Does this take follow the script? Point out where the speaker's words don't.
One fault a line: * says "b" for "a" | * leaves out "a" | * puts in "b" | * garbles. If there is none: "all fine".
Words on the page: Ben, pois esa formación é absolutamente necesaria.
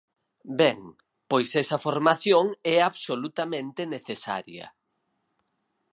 all fine